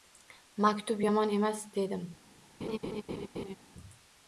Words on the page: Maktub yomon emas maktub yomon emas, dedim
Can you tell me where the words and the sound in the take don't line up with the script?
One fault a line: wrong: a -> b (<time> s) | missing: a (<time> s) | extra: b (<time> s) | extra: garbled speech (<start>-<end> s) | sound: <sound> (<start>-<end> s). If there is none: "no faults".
missing: maktub yomon emas (1.7 s)
sound: laugh (2.6-3.6 s)